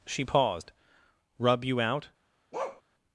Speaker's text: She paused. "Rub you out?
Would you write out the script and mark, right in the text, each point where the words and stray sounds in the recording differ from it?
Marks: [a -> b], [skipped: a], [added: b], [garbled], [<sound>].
She paused. "Rub you out? [bark]